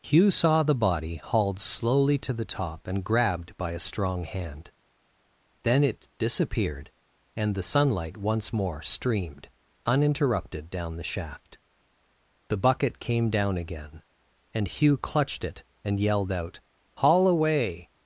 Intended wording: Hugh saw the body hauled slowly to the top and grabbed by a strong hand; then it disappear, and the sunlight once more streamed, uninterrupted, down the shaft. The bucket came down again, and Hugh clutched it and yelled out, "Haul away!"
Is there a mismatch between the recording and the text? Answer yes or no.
yes